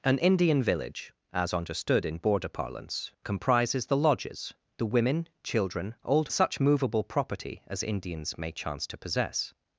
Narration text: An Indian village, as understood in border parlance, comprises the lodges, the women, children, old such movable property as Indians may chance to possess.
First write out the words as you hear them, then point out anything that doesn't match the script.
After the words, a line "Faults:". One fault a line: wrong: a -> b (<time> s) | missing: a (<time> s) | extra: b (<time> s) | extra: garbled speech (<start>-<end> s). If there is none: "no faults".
An Indian village, as understood in border parlance, comprises the lodges, the women, children, old such movable property as Indians may chance to possess.
Faults:
no faults